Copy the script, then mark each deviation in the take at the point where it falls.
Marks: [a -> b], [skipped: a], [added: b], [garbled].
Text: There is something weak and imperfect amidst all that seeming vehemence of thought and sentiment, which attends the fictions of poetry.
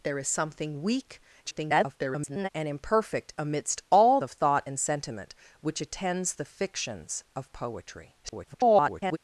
There is something weak [garbled] and imperfect amidst all [skipped: that seeming vehemence] of thought and sentiment, which attends the fictions of poetry. [garbled]